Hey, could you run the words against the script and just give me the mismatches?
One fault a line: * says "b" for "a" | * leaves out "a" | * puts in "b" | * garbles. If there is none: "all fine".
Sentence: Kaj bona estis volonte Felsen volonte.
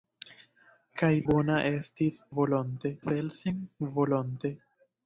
all fine